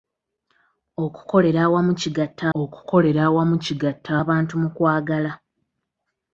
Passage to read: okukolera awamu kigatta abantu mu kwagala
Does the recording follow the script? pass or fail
fail